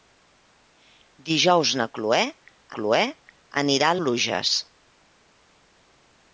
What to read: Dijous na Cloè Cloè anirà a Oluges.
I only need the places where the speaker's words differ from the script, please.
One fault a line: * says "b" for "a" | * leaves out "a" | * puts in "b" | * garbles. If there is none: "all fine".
all fine